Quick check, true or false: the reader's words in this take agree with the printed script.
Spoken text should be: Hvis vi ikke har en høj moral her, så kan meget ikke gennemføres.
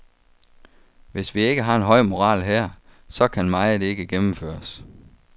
true